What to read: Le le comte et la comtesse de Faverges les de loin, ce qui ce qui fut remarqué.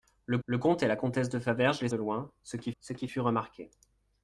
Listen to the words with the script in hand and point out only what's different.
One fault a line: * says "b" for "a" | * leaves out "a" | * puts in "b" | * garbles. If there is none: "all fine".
all fine